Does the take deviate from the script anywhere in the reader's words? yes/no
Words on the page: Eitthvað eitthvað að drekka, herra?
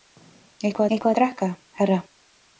no